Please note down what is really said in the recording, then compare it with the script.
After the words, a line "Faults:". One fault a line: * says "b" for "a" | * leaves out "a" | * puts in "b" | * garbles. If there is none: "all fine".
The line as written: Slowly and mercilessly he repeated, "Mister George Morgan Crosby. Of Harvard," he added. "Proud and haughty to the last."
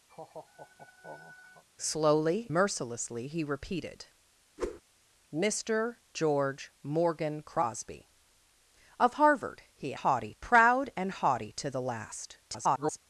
Slowly mercilessly he repeated, "Mister George Morgan Crosby. Of Harvard," he haughty. "Proud and haughty to the last." [garbled]
Faults:
* leaves out "and"
* says "haughty" for "added"
* garbles